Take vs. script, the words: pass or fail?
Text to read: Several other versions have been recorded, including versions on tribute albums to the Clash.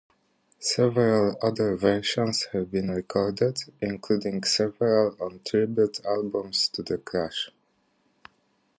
fail